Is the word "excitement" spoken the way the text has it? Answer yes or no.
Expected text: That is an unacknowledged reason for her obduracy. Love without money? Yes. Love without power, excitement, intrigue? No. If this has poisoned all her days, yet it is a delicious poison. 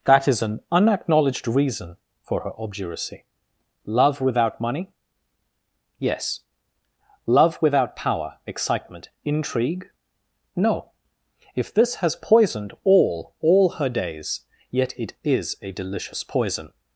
yes